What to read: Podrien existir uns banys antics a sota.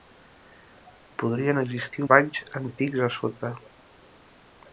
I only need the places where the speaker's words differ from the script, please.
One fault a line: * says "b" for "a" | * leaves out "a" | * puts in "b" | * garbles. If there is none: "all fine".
* leaves out "uns"